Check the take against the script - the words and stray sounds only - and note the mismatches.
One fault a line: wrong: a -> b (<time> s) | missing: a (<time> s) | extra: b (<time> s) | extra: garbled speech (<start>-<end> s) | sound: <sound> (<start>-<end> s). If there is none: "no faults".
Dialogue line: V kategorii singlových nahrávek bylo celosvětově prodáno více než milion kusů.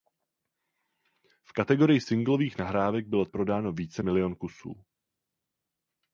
missing: celosvětově (3.3 s)
missing: než (4.0 s)